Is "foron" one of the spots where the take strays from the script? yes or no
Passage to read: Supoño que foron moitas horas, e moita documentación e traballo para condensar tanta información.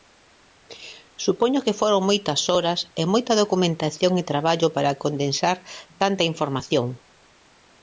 no